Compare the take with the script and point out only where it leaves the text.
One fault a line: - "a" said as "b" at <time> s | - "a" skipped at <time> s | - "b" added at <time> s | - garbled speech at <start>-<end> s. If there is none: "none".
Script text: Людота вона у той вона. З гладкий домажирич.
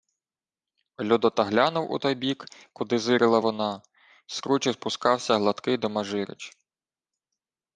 - "вона" said as "глянув" at 1.4 s
- "бік куди зирила" added at 2.1 s
- "кручі спускався" added at 4.4 s